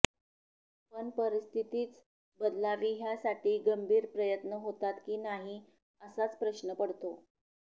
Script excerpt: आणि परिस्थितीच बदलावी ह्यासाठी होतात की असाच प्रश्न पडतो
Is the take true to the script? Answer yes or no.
no